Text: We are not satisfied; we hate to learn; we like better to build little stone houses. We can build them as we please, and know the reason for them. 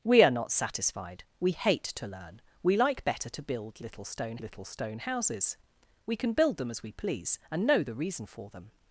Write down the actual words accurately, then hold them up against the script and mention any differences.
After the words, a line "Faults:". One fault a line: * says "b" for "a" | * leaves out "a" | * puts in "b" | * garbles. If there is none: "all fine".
We are not satisfied; we hate to learn; we like better to build little stone little stone houses. We can build them as we please, and know the reason for them.
Faults:
* puts in "little stone"